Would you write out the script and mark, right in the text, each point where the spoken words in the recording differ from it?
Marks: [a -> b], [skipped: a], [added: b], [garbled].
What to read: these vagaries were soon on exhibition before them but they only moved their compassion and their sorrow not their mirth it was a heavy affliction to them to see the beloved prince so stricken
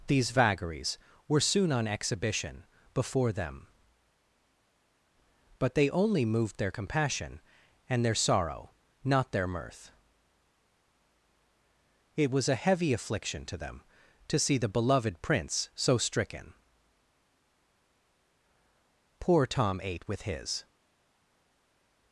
these vagaries were soon on exhibition before them but they only moved their compassion and their sorrow not their mirth it was a heavy affliction to them to see the beloved prince so stricken [added: poor tom ate with his]